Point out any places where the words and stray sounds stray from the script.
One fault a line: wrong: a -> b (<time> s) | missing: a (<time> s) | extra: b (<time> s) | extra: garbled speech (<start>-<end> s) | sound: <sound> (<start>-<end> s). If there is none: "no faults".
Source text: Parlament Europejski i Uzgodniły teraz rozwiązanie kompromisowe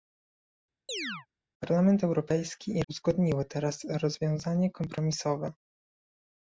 sound: chirp (0.9-1.3 s)